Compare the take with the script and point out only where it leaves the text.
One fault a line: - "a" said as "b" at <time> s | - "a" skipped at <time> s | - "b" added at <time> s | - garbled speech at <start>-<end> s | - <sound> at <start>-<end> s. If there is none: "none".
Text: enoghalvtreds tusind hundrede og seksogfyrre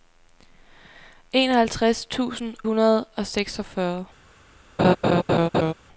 - laugh at 4.8-5.7 s